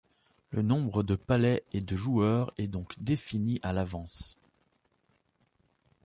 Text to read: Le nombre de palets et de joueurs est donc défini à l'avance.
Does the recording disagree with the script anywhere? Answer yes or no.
no